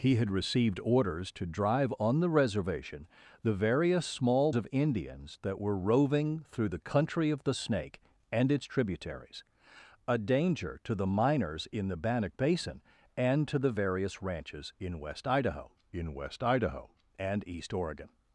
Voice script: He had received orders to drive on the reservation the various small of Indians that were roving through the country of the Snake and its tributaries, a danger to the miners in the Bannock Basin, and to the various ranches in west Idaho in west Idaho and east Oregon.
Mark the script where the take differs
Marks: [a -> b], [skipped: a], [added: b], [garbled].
He had received orders to drive on the reservation the various small of Indians that were roving through the country of the Snake and its tributaries, a danger to the miners in the Bannock Basin, and to the various ranches in west Idaho in west Idaho and east Oregon.